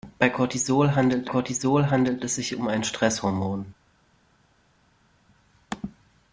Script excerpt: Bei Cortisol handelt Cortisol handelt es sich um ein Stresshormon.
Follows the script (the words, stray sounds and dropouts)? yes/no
yes